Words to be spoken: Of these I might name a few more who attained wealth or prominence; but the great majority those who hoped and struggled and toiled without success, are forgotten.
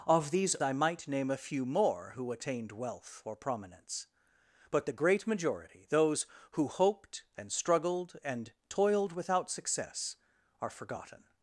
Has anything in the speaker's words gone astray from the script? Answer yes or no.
no